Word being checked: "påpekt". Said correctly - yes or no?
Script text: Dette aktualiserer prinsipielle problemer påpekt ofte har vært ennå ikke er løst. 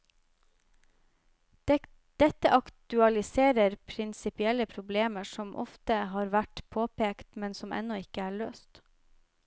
no